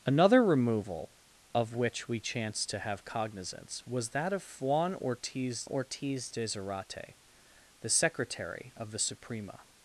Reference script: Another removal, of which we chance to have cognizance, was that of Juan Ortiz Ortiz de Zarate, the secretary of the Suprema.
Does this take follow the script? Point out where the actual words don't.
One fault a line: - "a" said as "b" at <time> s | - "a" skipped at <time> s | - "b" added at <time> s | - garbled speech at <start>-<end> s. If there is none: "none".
none